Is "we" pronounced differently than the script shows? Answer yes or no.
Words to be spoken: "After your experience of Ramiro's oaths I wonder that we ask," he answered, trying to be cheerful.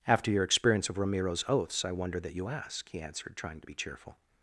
yes